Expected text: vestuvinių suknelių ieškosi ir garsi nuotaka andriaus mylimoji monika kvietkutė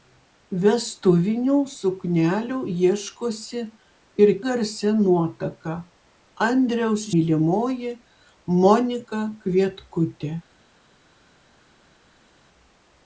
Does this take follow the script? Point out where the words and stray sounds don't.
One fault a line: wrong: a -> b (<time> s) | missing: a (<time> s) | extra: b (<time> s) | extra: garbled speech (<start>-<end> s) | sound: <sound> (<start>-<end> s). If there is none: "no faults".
no faults